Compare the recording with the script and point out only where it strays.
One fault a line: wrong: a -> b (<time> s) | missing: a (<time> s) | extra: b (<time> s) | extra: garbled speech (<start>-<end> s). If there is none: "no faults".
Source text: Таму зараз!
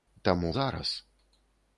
no faults